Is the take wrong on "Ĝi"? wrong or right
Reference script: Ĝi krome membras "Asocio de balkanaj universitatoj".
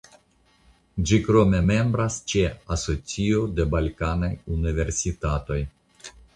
right